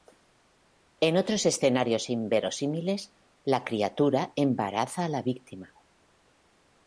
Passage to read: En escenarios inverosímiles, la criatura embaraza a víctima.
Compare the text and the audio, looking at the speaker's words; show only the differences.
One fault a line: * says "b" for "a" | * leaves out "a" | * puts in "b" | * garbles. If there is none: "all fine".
* puts in "otros"
* puts in "la"